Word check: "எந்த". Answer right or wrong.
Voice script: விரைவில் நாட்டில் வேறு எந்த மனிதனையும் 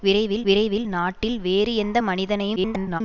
right